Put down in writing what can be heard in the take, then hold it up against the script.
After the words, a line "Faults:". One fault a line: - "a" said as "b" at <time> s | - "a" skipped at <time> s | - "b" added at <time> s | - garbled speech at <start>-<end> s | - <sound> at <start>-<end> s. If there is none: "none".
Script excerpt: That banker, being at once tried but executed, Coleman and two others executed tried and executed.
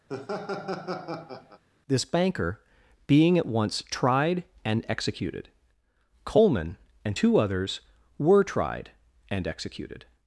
This banker, being at once tried and executed, Coleman and two others were tried and executed.
Faults:
- laugh at 0.1-1.6 s
- "That" said as "This" at 1.9 s
- "but" said as "and" at 4.6 s
- "executed" said as "were" at 8.2 s